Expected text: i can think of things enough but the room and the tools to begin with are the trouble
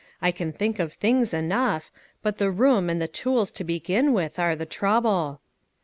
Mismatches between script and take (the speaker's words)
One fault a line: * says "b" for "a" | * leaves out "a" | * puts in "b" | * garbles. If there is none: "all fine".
all fine